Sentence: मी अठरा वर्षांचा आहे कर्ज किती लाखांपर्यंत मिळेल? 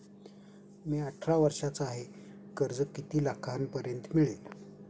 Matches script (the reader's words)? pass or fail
pass